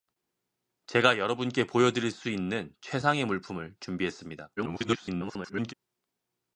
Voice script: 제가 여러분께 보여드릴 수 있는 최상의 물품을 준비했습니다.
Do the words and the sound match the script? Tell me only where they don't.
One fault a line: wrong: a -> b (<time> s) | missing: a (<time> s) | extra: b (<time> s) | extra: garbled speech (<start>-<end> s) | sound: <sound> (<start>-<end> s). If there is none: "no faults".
extra: garbled speech (4.6-5.7 s)